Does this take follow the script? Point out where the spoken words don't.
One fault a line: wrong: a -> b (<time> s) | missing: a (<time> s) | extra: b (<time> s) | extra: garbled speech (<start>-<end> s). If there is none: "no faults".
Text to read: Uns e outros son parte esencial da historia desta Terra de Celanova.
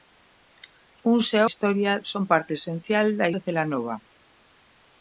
wrong: outros -> historia (1.5 s)
missing: historia desta Terra (3.3 s)